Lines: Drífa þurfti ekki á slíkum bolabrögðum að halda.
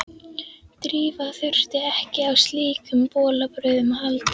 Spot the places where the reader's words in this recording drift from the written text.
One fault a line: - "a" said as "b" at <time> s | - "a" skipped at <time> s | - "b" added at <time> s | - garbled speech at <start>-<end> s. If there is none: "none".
none